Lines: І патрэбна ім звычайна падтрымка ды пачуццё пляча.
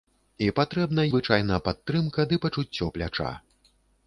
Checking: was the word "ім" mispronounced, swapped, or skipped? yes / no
yes